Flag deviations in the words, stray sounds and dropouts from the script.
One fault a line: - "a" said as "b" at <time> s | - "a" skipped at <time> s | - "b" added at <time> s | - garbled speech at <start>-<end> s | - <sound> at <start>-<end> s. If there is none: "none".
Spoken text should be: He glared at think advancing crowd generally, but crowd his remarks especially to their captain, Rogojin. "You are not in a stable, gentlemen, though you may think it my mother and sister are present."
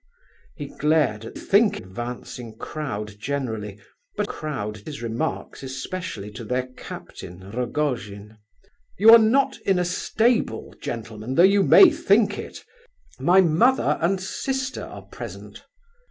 none